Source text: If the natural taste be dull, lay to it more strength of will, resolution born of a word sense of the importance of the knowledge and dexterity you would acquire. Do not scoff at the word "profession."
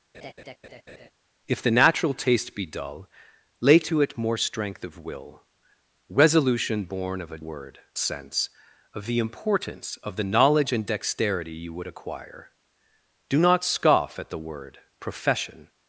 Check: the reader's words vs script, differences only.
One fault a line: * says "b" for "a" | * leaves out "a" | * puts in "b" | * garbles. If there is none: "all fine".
all fine